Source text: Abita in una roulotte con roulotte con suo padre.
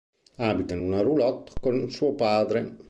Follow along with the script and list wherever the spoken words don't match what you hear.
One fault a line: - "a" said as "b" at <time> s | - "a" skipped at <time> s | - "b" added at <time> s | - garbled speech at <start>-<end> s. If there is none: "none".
- "roulotte con" skipped at 1.9 s